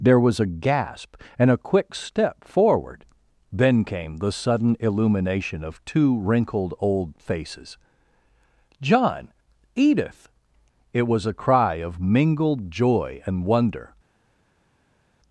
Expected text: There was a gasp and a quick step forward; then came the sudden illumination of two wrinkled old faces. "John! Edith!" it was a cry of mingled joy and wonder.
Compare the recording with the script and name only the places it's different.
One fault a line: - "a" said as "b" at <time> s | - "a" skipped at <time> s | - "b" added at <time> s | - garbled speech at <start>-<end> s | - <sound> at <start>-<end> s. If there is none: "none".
none